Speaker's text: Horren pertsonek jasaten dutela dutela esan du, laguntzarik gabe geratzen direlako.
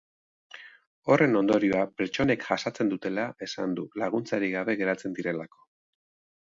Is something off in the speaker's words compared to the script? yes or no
yes